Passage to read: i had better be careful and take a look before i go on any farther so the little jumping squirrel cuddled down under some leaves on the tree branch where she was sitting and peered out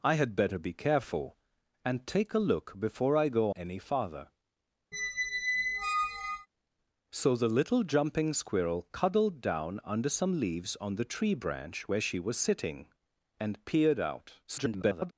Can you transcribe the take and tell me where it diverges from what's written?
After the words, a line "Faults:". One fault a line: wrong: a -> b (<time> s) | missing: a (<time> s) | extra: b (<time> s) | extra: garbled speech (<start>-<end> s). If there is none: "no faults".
i had better be careful and take a look before i go any farther so the little jumping squirrel cuddled down under some leaves on the tree branch where she was sitting and peered out [garbled]
Faults:
missing: on (3.5 s)
extra: garbled speech (14.5-15.1 s)